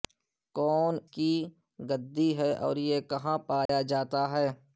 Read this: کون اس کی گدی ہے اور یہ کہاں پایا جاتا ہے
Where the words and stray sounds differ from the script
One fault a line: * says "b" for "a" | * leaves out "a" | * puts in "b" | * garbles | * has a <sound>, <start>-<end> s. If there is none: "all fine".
* leaves out "اس"
* has a dropout, 3.7-3.7 s